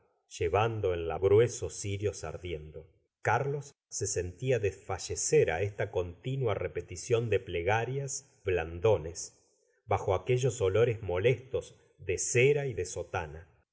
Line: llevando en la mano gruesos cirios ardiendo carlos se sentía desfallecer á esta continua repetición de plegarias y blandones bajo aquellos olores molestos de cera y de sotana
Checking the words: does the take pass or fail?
fail